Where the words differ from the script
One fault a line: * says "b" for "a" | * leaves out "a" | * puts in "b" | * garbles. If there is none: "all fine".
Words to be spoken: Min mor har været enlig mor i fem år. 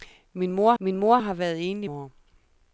* puts in "min mor"
* leaves out "mor i fem"